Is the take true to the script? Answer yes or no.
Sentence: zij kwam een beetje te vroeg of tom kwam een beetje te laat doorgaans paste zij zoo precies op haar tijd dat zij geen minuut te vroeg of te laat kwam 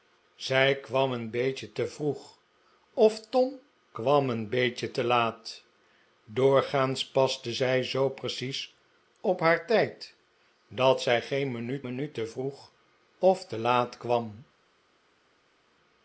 no